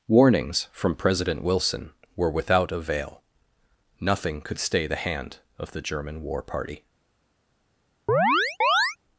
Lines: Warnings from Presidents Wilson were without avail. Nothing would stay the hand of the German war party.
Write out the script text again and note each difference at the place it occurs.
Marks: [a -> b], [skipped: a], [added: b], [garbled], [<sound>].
Warnings from [Presidents -> President] Wilson were without avail. Nothing [would -> could] stay the hand of the German war party. [chirp]